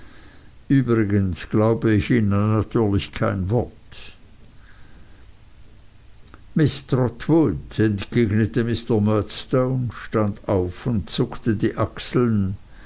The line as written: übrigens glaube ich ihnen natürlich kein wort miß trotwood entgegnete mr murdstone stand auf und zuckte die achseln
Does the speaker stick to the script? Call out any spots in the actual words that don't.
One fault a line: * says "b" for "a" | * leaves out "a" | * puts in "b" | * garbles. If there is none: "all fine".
all fine